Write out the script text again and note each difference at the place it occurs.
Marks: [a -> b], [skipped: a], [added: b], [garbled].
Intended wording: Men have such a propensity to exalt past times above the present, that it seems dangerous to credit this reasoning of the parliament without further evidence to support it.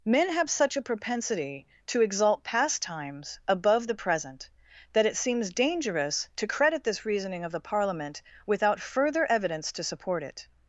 Men have such a propensity to exalt past times above the present, that it seems dangerous to credit this reasoning of the parliament without further evidence to support it.